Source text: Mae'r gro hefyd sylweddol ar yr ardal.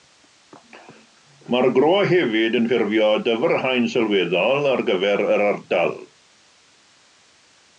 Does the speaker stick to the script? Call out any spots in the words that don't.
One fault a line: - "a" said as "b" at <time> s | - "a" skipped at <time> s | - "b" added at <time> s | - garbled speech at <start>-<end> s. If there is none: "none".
- "yn ffurfio dyfrhaen" added at 2.6 s
- "gyfer" added at 4.9 s